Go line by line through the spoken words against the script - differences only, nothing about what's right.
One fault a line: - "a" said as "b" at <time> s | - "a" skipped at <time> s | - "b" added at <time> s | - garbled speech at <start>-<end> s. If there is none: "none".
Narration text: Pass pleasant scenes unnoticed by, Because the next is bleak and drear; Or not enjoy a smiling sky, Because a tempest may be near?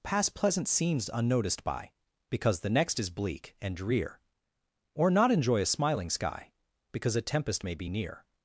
none